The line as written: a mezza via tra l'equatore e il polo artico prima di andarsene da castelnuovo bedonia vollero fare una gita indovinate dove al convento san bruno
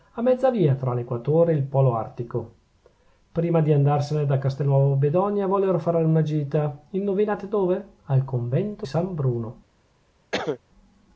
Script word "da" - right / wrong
right